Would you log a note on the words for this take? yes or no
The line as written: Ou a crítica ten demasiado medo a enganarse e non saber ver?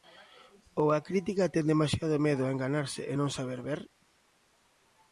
no